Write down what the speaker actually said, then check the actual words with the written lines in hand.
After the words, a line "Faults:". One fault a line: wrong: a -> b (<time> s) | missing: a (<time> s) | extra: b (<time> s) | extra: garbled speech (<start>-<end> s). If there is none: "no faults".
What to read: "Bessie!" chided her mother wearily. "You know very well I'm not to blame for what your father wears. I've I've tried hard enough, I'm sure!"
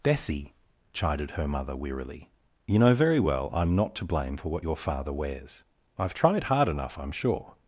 "Bessie!" chided her mother wearily. "You know very well I'm not to blame for what your father wears. I've tried hard enough, I'm sure!"
Faults:
missing: I've (6.1 s)